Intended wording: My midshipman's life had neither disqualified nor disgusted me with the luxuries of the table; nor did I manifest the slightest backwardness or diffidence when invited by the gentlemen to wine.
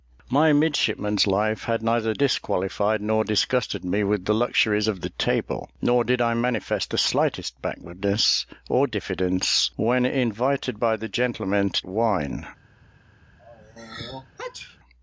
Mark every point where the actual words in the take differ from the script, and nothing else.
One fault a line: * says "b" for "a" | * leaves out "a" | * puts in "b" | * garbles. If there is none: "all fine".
all fine